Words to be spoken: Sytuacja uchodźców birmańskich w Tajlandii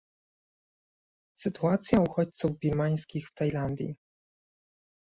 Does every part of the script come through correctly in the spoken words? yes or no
yes